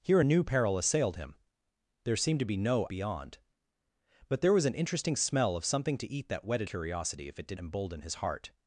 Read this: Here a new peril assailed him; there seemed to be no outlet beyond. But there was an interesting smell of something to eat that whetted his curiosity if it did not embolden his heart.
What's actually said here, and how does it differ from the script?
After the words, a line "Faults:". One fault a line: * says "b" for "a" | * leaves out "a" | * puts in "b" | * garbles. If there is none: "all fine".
Here a new peril assailed him; there seemed to be no beyond. But there was an interesting smell of something to eat that whetted curiosity if it did embolden his heart.
Faults:
* leaves out "outlet"
* leaves out "his"
* leaves out "not"